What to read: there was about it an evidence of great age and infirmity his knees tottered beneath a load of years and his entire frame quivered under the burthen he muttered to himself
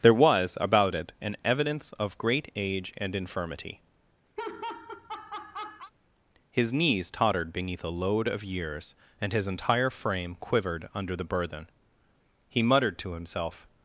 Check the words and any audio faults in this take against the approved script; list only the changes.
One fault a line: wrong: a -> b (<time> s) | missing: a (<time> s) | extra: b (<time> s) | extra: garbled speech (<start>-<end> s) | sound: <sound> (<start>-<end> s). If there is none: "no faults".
sound: laugh (4.4-5.9 s)